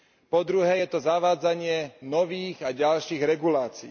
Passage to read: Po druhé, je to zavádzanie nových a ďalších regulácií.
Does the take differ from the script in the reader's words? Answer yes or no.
no